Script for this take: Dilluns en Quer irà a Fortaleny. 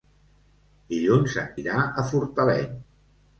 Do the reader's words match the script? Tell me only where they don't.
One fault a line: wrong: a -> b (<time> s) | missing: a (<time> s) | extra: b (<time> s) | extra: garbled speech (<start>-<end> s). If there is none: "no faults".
missing: Quer (1.5 s)